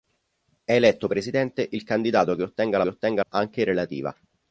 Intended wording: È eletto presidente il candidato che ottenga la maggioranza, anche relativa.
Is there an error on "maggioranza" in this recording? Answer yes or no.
yes